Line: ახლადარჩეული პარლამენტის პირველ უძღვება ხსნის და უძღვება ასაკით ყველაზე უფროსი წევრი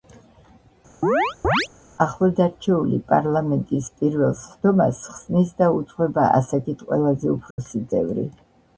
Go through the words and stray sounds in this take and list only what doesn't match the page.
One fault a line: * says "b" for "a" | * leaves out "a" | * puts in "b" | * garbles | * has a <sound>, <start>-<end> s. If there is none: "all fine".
* has a chirp, 1.0-1.7 s
* says "სხდომას" for "უძღვება"
* has a dropout, 7.5-7.6 s